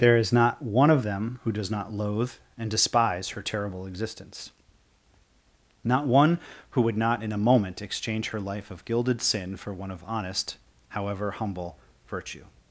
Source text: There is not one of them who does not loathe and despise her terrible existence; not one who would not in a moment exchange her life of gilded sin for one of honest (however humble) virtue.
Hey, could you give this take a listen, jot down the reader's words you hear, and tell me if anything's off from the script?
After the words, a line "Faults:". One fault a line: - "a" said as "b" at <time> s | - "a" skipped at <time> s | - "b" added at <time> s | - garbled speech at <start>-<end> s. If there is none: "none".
There is not one of them who does not loathe and despise her terrible existence; not one who would not in a moment exchange her life of gilded sin for one of honest (however humble) virtue.
Faults:
none